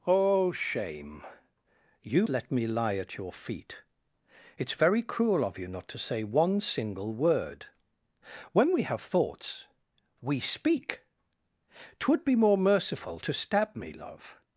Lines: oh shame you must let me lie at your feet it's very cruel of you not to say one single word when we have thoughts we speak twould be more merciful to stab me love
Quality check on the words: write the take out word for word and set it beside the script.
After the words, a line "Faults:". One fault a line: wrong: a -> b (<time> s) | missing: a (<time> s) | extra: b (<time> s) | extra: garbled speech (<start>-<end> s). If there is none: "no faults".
oh shame you let me lie at your feet it's very cruel of you not to say one single word when we have thoughts we speak twould be more merciful to stab me love
Faults:
missing: must (2.3 s)